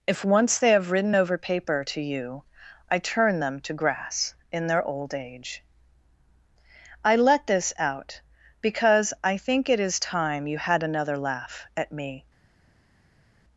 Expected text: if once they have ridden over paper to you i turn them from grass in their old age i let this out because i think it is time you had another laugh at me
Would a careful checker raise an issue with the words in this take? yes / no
yes